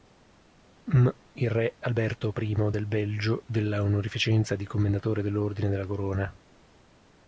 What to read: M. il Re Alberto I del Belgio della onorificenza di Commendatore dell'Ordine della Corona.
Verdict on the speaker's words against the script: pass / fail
pass